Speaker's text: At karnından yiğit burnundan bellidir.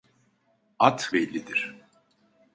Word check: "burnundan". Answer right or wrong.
wrong